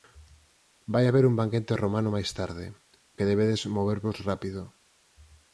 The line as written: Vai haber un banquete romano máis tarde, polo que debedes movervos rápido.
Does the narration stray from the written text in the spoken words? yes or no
yes